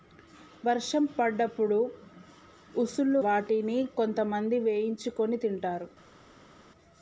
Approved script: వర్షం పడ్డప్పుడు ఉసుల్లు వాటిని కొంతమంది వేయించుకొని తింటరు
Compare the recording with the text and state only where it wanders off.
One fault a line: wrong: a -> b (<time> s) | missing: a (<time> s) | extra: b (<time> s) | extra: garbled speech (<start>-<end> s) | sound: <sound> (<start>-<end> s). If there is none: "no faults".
no faults